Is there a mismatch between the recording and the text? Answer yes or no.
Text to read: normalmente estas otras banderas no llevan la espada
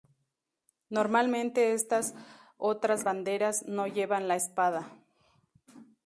no